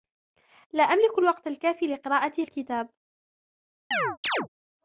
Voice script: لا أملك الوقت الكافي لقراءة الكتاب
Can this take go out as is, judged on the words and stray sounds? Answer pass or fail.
fail